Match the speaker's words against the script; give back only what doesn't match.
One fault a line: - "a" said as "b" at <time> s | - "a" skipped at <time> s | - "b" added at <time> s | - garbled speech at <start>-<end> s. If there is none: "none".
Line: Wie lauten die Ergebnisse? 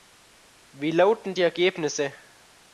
none